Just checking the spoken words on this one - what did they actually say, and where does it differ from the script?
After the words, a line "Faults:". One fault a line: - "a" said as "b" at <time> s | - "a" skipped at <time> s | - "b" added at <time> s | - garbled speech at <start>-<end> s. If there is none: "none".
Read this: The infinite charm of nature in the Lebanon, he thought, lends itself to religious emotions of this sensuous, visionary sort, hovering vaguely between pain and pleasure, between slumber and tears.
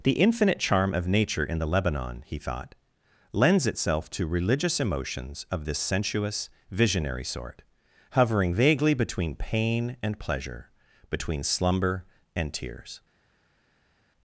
The infinite charm of nature in the Lebanon, he thought, lends itself to religious emotions of this sensuous, visionary sort, hovering vaguely between pain and pleasure, between slumber and tears.
Faults:
none